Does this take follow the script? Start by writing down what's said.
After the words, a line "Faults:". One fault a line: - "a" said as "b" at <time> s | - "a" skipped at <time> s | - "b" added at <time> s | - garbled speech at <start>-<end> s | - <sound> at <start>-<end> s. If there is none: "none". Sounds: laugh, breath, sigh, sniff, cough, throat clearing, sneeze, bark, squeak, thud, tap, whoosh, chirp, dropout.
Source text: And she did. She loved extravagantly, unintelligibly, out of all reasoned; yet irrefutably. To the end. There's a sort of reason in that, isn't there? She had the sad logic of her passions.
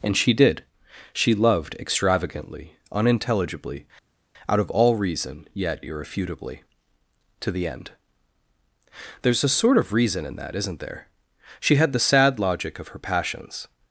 And she did. She loved extravagantly, unintelligibly, out of all reason; yet irrefutably. To the end. There's a sort of reason in that, isn't there? She had the sad logic of her passions.
Faults:
- "reasoned" said as "reason" at 4.9 s